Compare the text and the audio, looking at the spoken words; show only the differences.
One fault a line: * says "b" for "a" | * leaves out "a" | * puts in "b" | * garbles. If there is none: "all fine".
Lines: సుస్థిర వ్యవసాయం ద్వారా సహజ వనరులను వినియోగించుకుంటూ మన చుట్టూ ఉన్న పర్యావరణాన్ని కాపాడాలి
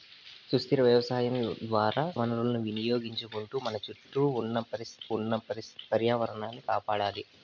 * leaves out "సహజ"
* puts in "ఉన్న"